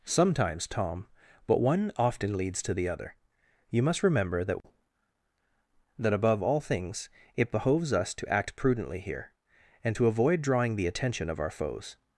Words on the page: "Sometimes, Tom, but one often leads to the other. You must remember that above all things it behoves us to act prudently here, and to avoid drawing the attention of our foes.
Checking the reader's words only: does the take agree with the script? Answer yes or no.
no